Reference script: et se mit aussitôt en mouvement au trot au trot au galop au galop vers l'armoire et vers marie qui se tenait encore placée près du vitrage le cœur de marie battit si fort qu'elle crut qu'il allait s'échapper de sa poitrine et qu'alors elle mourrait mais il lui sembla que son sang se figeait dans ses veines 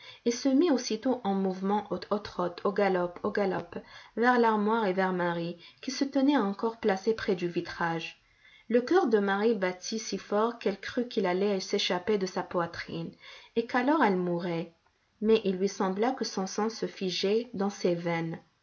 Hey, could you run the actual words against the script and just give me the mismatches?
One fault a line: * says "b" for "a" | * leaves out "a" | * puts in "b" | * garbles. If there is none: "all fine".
* leaves out "trot"